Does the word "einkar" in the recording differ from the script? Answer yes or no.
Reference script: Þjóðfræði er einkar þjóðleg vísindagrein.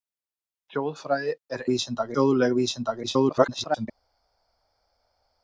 yes